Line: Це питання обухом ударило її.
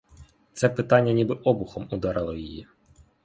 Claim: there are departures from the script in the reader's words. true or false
true